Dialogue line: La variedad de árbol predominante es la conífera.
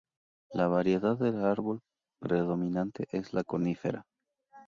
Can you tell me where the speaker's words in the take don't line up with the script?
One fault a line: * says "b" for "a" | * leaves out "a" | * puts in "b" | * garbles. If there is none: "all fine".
all fine